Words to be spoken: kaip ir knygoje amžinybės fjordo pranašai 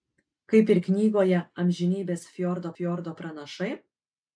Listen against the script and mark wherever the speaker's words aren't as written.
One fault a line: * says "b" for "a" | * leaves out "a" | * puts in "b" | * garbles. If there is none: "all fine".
* puts in "fjordo"